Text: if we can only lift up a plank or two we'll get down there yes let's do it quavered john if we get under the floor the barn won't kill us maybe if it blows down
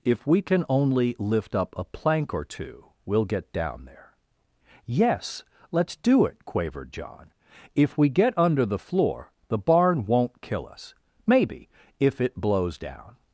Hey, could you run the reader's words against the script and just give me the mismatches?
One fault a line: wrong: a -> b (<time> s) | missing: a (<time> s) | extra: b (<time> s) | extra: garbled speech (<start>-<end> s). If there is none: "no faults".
no faults